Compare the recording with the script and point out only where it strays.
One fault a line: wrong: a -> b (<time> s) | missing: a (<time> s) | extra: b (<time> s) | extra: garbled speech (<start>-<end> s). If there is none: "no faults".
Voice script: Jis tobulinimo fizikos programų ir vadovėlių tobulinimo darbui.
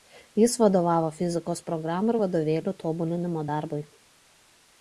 wrong: tobulinimo -> vadovavo (0.6 s)